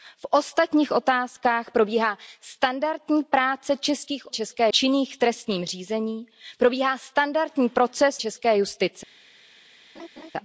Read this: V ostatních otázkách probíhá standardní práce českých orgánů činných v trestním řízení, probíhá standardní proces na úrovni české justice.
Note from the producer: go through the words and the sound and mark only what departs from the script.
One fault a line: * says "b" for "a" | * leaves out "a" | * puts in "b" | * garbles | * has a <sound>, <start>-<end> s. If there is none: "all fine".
* says "české" for "orgánů"
* leaves out "na úrovni"
* has a laugh, 10.0-10.3 s